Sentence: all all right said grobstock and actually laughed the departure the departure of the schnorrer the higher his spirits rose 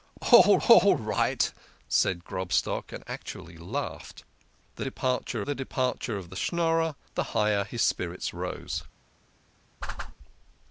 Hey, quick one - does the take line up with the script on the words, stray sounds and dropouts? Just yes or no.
no